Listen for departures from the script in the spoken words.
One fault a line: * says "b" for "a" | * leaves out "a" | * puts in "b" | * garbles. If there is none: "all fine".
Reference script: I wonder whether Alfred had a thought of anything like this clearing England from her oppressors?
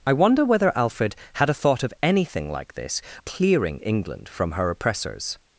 all fine